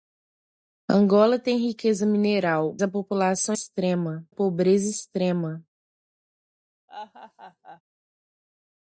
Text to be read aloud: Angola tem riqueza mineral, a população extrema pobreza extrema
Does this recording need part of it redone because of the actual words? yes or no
no